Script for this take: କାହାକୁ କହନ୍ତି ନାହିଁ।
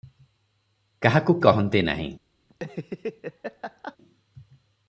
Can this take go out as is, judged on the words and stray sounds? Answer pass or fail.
fail